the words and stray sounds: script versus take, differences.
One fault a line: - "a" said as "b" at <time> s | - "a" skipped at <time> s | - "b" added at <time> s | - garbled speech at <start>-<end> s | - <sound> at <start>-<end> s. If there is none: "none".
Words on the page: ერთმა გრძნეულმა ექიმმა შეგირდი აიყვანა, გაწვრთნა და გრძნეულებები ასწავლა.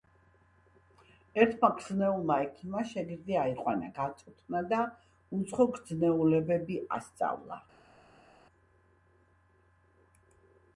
- "უცხო" added at 5.4 s